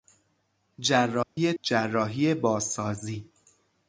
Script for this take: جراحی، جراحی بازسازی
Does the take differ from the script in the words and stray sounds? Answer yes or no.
yes